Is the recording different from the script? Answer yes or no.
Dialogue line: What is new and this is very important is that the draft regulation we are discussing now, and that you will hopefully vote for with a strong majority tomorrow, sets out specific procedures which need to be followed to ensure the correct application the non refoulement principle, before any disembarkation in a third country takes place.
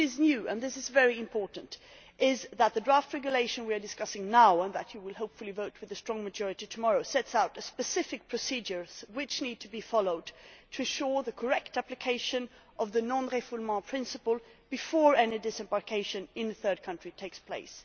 yes